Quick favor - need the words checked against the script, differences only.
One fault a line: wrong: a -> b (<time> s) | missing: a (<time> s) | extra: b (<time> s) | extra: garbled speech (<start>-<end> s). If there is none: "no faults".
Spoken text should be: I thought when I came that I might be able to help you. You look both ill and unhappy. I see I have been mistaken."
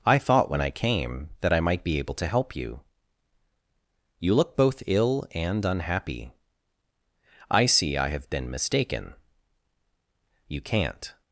extra: You can't (10.5 s)